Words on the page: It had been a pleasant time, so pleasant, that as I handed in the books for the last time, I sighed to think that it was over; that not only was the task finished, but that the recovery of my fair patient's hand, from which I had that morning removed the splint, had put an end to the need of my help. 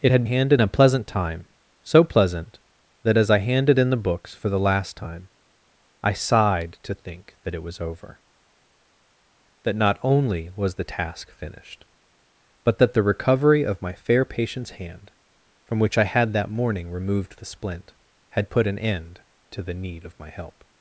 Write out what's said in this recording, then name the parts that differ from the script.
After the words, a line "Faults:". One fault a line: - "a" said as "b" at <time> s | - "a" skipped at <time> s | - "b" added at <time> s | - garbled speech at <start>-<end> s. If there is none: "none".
It had handed a pleasant time, so pleasant, that as I handed in the books for the last time, I sighed to think that it was over; that not only was the task finished, but that the recovery of my fair patient's hand, from which I had that morning removed the splint, had put an end to the need of my help.
Faults:
- "been" said as "handed" at 0.2 s